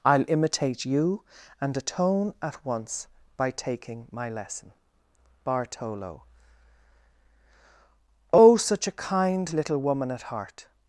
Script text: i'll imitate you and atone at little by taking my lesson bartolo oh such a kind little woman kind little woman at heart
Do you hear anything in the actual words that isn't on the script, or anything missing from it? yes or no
yes